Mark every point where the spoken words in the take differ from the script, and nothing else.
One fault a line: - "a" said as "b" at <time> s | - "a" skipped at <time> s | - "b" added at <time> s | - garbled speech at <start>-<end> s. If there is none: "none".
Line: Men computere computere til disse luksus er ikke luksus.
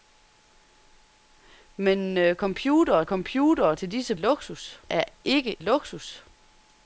none